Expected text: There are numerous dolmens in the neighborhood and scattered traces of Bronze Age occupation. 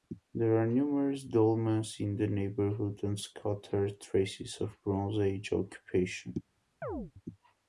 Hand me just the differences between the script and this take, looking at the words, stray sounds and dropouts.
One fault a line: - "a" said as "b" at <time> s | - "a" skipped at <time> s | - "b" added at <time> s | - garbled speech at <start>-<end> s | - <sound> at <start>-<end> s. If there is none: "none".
- chirp at 6.8-7.1 s